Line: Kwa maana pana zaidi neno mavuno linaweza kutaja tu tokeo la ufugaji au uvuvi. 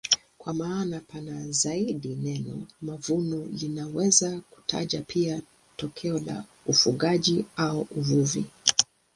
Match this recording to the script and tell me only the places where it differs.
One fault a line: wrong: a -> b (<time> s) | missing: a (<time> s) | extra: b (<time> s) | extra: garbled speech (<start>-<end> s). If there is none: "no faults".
wrong: tu -> pia (5.0 s)